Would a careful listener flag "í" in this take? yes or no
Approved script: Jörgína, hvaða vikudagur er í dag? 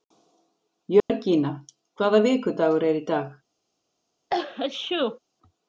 no